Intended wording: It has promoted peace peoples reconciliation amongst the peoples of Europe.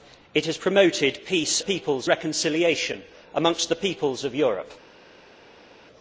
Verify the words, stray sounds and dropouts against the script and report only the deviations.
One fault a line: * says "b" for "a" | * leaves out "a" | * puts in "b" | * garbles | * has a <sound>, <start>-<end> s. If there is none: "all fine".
all fine